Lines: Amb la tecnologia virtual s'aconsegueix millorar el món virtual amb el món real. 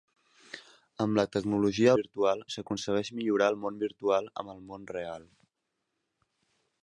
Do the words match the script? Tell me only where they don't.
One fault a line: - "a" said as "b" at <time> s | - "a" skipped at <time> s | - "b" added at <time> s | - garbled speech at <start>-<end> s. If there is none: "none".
none